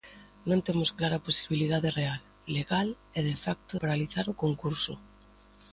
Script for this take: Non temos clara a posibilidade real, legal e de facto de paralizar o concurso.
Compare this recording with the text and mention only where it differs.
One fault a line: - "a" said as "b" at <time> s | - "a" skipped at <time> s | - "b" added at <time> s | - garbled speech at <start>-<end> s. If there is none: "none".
- "de" skipped at 3.7 s